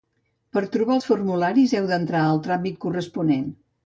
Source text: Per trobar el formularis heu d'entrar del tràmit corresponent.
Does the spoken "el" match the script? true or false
false